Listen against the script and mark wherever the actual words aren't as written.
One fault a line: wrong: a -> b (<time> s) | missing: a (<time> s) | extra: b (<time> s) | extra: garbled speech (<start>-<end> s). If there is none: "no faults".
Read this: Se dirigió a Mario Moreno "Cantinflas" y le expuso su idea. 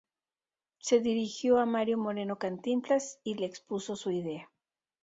no faults